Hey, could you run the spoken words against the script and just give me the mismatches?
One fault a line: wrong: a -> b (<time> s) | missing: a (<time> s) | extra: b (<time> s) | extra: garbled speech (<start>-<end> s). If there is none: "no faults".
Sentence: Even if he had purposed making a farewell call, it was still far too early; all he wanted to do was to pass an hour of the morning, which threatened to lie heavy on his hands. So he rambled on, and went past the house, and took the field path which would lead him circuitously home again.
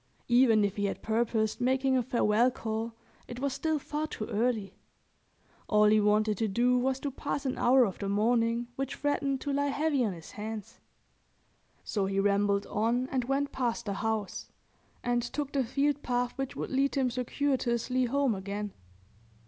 no faults